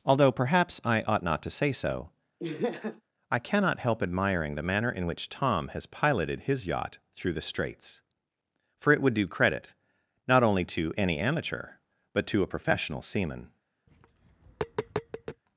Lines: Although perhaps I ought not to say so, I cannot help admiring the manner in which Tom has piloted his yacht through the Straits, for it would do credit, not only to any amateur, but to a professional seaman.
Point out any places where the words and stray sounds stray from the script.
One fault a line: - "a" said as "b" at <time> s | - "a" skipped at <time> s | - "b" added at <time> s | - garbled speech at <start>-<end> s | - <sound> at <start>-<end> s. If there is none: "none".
- laugh at 2.4-3.0 s
- tap at 13.9-15.4 s